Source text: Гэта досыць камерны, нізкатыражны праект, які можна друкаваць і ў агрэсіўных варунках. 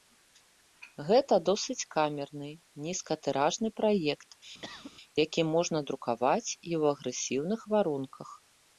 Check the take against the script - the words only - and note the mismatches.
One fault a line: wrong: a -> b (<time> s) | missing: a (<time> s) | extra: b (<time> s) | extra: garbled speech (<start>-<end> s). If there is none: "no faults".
no faults